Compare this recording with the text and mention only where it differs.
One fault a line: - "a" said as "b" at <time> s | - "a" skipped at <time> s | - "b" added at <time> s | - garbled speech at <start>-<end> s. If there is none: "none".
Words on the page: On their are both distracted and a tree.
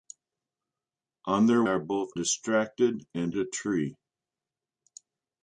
none